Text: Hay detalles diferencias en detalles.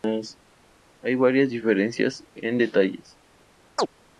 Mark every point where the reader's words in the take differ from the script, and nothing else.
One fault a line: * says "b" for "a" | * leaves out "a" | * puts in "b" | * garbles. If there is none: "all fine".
* says "varias" for "detalles"